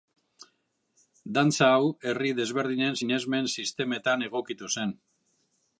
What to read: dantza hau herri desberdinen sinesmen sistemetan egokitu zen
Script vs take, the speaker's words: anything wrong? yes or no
no